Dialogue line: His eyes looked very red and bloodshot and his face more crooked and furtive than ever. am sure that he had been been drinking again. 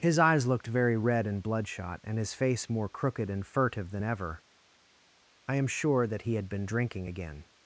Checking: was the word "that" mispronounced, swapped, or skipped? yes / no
no